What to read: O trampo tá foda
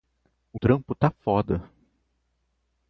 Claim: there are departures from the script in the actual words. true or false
false